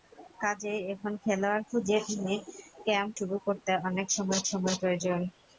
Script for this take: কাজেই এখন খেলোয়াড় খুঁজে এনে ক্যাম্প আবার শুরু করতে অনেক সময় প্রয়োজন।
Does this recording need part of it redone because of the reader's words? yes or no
yes